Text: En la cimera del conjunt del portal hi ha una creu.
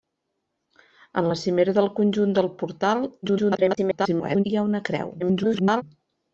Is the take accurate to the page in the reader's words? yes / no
no